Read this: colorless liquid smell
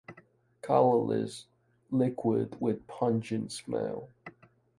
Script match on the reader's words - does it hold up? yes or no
no